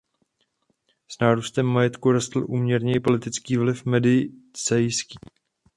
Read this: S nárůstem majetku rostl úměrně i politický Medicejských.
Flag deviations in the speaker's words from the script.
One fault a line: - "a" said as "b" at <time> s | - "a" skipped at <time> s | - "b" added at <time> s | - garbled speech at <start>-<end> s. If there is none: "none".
- "vliv" added at 3.6 s